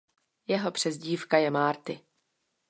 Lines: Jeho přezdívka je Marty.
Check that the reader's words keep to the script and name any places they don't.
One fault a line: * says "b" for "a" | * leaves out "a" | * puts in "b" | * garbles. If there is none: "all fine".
all fine